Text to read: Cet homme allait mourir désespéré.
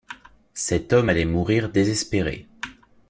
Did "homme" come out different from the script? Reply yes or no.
no